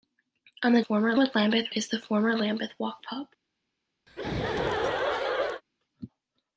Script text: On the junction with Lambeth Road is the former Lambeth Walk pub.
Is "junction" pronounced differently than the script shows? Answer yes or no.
yes